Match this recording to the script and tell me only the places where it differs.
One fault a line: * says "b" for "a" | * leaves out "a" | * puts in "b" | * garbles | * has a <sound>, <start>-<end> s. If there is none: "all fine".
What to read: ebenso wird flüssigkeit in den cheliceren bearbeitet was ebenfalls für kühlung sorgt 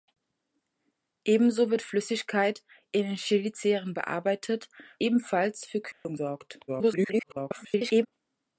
* leaves out "was"
* has a dropout, 5.9-6.1 s
* garbles